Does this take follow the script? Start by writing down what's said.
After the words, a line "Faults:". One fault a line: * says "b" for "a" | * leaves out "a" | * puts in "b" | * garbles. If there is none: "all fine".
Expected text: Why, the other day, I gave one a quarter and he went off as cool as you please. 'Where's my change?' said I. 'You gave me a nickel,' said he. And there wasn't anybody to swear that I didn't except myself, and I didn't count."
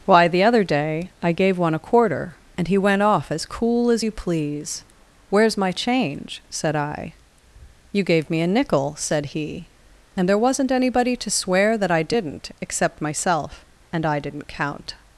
Why, the other day, I gave one a quarter and he went off as cool as you please. 'Where's my change?' said I. 'You gave me a nickel,' said he. And there wasn't anybody to swear that I didn't except myself, and I didn't count."
Faults:
all fine